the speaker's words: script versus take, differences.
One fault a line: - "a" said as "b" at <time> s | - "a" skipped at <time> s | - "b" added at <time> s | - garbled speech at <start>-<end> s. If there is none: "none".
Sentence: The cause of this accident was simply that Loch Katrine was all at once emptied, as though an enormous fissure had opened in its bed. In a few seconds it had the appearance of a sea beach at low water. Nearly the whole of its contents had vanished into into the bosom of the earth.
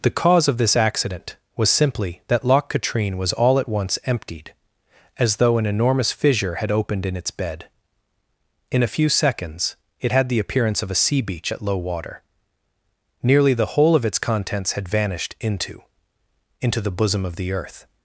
none